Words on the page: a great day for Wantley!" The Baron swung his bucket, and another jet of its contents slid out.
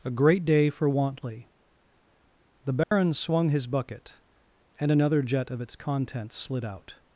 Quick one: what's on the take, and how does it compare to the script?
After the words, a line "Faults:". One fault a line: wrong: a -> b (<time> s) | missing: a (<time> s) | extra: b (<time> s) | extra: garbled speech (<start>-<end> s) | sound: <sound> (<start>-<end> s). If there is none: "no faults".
a great day for Wantley!" The Baron swung his bucket, and another jet of its contents slid out.
Faults:
sound: dropout (2.8-2.9 s)